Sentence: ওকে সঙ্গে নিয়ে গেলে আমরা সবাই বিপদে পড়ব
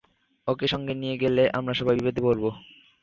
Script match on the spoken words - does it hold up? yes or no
yes